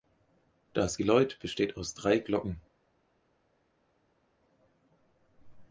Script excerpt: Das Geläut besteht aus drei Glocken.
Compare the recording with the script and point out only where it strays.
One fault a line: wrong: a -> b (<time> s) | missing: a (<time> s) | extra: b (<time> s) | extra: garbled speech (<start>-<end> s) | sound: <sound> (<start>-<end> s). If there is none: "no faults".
no faults